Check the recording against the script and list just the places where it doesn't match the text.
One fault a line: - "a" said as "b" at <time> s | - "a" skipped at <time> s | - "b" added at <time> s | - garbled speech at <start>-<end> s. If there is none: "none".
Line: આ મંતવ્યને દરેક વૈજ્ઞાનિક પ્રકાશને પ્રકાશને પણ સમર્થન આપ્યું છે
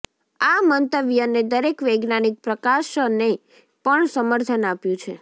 - "પ્રકાશને" skipped at 3.3 s